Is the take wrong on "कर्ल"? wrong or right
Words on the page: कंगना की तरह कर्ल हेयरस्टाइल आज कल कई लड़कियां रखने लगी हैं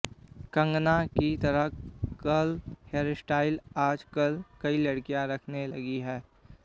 right